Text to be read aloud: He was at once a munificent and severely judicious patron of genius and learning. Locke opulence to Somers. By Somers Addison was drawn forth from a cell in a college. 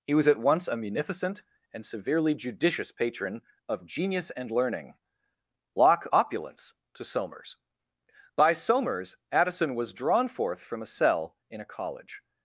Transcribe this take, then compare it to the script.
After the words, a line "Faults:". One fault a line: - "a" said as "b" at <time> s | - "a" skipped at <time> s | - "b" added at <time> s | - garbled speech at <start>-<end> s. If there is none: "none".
He was at once a munificent and severely judicious patron of genius and learning. Locke opulence to Somers. By Somers Addison was drawn forth from a cell in a college.
Faults:
none